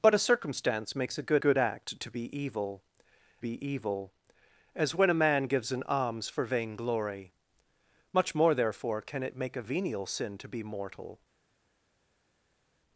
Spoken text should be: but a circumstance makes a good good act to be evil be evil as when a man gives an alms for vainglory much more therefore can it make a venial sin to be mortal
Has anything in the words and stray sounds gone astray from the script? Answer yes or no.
no